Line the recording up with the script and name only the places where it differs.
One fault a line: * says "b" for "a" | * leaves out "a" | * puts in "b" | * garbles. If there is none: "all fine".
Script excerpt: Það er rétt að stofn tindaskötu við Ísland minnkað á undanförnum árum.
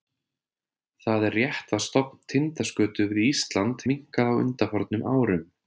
all fine